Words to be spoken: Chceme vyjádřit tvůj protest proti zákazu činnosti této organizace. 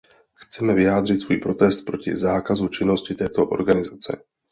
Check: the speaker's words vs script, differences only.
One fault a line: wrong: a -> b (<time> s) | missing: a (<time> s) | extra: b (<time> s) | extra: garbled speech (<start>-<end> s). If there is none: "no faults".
wrong: tvůj -> svůj (1.2 s)